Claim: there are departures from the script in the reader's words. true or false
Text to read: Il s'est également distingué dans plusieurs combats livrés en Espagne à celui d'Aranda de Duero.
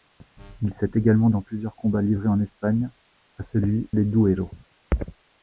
true